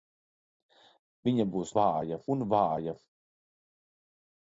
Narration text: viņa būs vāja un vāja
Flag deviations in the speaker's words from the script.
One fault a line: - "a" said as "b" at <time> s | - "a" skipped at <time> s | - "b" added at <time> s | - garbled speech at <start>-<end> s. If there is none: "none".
none